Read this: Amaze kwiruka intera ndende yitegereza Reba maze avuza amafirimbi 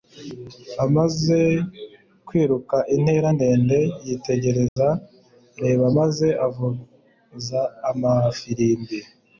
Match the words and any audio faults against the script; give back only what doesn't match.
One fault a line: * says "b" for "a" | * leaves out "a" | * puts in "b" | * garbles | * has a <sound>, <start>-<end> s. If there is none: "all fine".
* has a dropout, 4.7-4.8 s